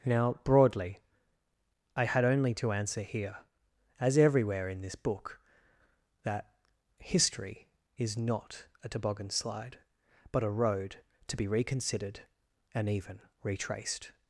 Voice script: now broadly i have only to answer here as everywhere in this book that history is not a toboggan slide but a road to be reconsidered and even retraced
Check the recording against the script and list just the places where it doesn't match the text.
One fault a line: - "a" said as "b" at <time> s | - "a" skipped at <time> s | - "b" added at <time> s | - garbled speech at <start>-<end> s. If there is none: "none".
- "have" said as "had" at 2.0 s